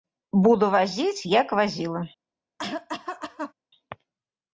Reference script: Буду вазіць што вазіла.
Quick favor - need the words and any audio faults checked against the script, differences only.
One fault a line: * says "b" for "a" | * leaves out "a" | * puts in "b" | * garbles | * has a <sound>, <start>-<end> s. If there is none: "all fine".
* says "як" for "што"
* has a cough, 2.6-3.5 s